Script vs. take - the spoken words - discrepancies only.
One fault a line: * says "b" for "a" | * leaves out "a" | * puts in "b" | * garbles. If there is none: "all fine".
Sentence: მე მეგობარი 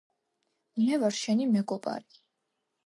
* puts in "ვარ შენი"